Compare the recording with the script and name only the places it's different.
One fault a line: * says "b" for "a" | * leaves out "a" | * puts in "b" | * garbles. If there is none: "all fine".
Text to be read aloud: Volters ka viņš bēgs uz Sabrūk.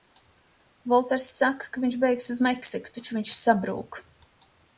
* puts in "saka"
* puts in "Meksiku taču viņš"